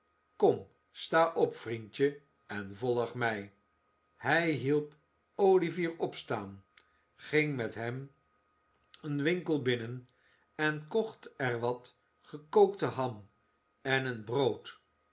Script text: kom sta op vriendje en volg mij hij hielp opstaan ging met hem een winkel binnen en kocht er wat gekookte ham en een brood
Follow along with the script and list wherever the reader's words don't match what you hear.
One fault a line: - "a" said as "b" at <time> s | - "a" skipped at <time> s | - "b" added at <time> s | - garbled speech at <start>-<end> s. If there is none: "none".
- "olivier" added at 5.4 s